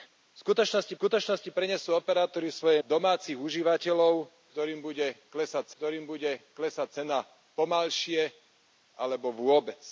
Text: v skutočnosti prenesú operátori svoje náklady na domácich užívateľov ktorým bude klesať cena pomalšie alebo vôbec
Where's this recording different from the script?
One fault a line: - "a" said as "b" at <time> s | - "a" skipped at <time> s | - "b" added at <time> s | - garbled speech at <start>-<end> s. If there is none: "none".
- "skutočnosti" added at 0.9 s
- "náklady na domácich užívateľov" said as "domácich užívateľov ktorým bude klesať" at 2.8 s